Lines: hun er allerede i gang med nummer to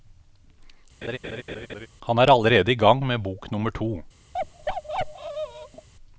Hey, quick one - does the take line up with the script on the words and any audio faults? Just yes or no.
no